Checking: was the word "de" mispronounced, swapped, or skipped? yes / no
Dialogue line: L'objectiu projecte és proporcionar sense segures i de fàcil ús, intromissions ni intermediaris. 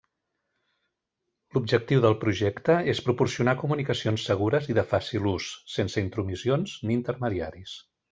no